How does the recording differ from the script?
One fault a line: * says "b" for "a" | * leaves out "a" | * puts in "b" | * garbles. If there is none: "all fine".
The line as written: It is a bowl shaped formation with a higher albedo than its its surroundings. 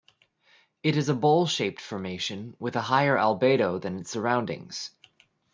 * leaves out "its"